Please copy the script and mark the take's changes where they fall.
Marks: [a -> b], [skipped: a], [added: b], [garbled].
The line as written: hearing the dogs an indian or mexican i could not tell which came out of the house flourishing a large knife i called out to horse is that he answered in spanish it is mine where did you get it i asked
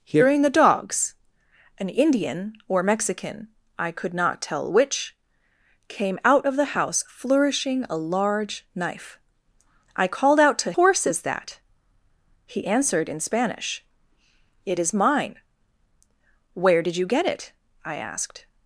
hearing the dogs an indian or mexican i could not tell which came out of the house flourishing a large knife i called out to horse is that he answered in spanish it is mine where did you get it i asked